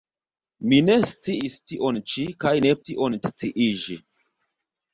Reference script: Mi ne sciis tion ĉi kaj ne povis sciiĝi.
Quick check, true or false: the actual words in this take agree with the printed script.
false